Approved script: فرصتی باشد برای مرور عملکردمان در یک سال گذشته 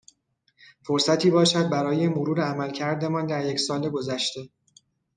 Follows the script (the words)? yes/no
yes